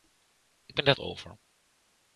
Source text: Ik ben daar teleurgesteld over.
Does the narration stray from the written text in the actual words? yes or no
yes